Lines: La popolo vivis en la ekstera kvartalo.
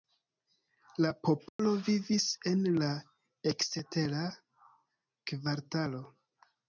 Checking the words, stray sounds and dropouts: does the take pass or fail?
fail